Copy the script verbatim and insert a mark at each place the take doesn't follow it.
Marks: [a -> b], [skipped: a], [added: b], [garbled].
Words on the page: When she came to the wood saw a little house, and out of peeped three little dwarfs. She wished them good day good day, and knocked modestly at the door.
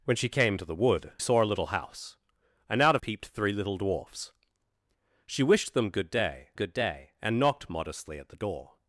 When she came to the wood saw a little house, and out of peeped three little dwarfs. She wished them good day good day, and knocked modestly at the door.